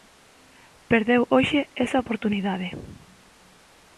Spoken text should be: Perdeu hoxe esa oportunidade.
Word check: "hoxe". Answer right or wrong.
right